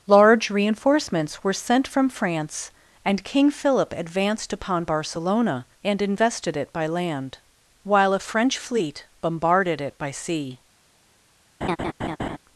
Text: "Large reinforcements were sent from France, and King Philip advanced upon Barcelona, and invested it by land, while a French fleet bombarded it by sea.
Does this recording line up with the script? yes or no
yes